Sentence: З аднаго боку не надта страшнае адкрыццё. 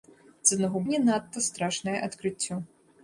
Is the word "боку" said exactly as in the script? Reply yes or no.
no